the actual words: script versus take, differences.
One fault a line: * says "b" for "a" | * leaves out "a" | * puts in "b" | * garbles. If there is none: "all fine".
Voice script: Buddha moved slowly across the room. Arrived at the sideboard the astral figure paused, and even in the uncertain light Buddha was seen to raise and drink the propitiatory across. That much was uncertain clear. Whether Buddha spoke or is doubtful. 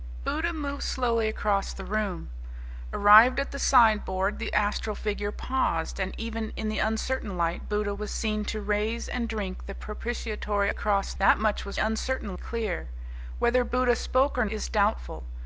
all fine